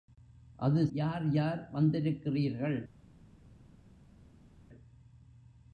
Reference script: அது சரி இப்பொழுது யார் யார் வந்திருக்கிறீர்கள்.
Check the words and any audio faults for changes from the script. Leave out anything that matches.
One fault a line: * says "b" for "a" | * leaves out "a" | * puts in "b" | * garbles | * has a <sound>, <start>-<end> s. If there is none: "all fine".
* leaves out "சரி இப்பொழுது"